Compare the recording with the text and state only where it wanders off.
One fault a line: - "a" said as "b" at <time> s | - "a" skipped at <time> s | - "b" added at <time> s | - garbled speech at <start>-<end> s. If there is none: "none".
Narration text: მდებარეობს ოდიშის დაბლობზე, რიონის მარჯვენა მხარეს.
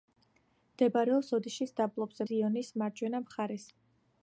none